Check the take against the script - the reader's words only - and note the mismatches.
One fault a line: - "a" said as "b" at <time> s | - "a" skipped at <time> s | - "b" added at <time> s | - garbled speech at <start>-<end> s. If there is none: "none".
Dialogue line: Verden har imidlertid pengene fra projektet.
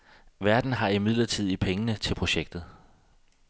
- "fra" said as "til" at 2.0 s